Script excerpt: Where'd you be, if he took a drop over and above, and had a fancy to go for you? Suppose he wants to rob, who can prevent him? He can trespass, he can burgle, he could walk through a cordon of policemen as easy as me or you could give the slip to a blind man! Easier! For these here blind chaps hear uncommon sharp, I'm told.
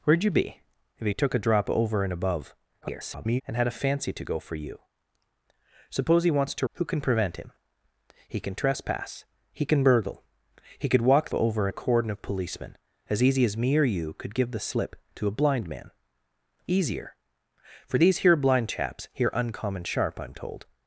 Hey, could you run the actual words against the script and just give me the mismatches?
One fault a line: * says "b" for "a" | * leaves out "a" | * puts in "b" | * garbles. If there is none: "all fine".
* garbles
* leaves out "rob"
* says "over" for "through"